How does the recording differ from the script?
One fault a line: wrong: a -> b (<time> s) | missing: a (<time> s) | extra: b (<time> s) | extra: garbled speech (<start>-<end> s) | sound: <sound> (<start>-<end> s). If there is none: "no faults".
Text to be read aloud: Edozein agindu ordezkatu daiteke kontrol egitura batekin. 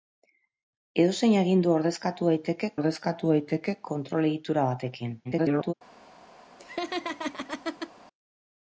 extra: ordezkatu daiteke (2.7 s)
extra: garbled speech (5.2-5.7 s)
sound: laugh (6.6-7.9 s)